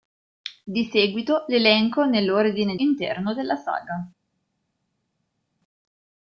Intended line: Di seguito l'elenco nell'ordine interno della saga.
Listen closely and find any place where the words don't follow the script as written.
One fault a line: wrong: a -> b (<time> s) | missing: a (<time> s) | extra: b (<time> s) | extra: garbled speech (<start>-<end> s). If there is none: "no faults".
no faults